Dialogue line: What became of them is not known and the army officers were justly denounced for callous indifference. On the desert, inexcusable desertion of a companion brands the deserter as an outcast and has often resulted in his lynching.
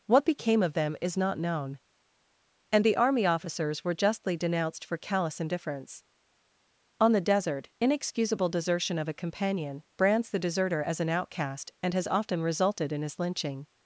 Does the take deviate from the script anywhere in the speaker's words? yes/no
no